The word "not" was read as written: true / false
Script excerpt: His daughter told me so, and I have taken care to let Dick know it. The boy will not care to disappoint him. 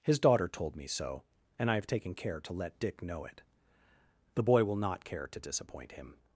true